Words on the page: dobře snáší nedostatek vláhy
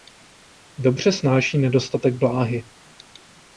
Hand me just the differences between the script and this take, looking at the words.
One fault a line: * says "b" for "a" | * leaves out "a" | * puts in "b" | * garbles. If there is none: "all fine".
all fine